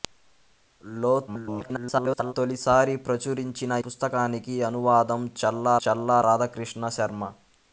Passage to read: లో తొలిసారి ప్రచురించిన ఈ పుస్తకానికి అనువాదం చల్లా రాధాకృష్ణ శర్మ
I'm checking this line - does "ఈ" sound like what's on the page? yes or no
no